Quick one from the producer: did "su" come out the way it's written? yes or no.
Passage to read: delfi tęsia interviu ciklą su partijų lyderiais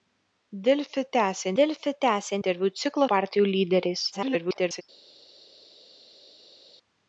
no